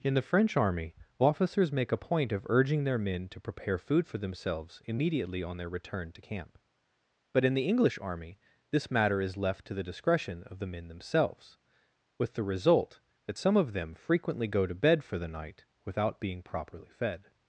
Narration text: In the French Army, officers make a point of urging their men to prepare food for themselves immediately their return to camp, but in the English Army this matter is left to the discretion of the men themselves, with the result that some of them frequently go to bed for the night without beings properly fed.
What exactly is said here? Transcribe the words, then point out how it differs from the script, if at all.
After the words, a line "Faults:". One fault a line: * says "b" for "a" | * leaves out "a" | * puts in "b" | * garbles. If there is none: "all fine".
In the French Army, officers make a point of urging their men to prepare food for themselves immediately on their return to camp, but in the English Army this matter is left to the discretion of the men themselves, with the result that some of them frequently go to bed for the night without being properly fed.
Faults:
* puts in "on"
* says "being" for "beings"